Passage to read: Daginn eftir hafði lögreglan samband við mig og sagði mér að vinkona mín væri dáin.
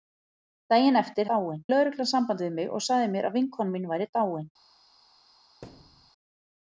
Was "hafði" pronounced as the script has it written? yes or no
no